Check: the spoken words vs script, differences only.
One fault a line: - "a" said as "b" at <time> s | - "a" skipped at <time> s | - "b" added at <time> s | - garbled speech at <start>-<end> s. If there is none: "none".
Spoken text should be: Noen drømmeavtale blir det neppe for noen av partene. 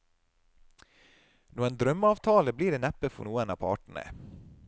none